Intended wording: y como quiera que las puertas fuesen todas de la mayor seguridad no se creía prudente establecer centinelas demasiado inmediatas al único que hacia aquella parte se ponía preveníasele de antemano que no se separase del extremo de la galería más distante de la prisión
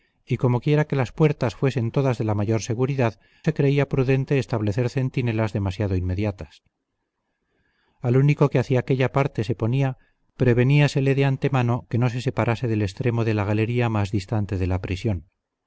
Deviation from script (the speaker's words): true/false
true